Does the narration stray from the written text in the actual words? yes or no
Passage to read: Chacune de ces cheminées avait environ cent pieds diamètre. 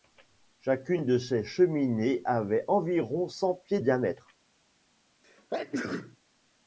no